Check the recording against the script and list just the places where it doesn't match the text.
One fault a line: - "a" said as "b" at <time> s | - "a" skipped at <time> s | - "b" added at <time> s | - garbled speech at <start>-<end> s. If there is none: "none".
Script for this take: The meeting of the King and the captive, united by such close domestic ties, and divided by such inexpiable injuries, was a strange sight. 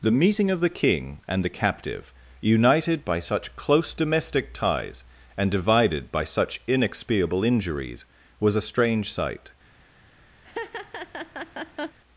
none